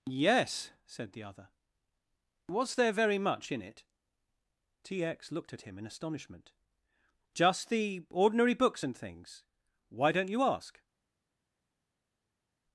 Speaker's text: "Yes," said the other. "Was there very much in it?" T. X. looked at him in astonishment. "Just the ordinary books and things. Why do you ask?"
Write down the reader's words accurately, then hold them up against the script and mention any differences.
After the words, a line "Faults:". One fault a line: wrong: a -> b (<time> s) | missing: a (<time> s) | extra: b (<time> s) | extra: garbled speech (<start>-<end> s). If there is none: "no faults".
"Yes," said the other. "Was there very much in it?" T. X. looked at him in astonishment. "Just the ordinary books and things. Why don't you ask?"
Faults:
wrong: do -> don't (10.1 s)